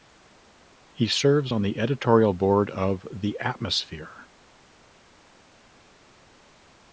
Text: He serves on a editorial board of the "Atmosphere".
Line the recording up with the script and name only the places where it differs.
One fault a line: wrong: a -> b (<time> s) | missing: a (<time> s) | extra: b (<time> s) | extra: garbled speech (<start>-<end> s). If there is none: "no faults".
wrong: a -> the (1.6 s)